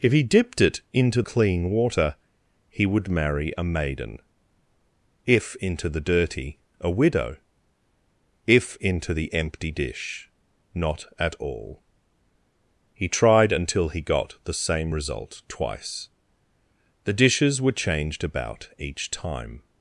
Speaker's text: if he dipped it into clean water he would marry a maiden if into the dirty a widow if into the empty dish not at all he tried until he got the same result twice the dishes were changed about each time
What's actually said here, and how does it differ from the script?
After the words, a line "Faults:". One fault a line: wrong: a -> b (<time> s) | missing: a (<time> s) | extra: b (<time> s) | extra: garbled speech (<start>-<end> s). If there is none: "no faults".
if he dipped it into clean water he would marry a maiden if into the dirty a widow if into the empty dish not at all he tried until he got the same result twice the dishes were changed about each time
Faults:
no faults